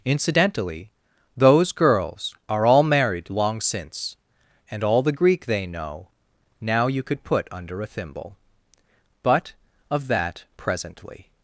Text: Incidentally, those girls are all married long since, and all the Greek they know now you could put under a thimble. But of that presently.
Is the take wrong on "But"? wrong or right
right